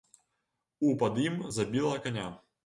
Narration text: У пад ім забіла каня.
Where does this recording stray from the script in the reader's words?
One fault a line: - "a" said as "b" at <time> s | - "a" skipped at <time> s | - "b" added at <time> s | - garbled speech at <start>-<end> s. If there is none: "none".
none